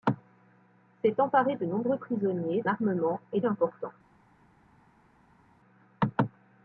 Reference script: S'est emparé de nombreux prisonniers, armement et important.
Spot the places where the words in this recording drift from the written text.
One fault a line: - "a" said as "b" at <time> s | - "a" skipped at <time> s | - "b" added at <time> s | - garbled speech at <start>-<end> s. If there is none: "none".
none